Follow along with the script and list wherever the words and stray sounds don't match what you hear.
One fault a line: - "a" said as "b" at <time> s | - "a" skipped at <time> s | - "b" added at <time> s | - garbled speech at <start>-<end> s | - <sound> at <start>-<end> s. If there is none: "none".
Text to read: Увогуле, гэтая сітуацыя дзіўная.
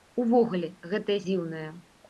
- "сітуацыя" skipped at 1.2 s